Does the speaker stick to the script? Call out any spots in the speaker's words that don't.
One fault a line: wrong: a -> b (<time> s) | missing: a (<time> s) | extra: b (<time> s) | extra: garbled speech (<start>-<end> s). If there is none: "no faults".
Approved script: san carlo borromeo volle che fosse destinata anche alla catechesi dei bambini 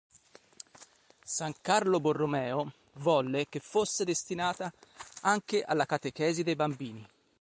no faults